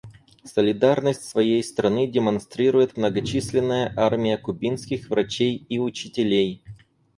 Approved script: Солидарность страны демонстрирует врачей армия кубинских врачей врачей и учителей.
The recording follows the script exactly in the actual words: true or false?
false